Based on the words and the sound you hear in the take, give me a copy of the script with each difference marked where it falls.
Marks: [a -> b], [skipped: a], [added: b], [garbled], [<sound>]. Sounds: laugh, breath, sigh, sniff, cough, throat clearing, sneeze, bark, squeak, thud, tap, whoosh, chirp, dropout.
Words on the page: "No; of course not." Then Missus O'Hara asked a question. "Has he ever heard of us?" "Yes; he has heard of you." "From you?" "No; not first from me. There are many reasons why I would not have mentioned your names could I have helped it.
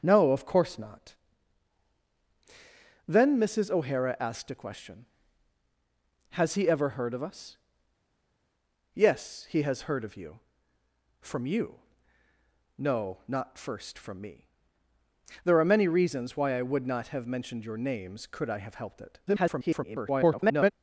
"No; of course not." Then Missus O'Hara asked a question. "Has he ever heard of us?" "Yes; he has heard of you." "From you?" "No; not first from me. There are many reasons why I would not have mentioned your names could I have helped it. [garbled]